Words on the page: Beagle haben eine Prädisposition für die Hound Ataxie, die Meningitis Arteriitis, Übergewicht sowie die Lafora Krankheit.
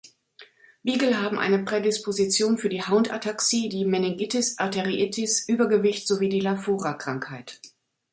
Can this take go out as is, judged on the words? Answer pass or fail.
pass